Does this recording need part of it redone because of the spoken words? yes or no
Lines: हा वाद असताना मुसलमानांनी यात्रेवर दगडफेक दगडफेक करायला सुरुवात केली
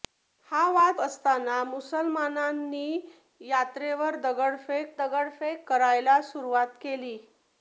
no